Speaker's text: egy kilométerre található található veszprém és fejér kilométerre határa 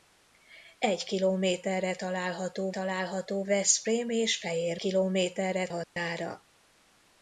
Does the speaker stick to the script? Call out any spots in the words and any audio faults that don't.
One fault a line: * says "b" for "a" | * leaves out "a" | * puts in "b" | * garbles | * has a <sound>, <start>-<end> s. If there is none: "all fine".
* has a dropout, 5.8-6.0 s